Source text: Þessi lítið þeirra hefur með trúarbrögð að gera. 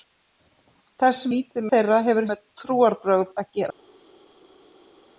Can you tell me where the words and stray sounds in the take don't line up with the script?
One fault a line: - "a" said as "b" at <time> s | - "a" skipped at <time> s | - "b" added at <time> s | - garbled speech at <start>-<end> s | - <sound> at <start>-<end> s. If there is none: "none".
none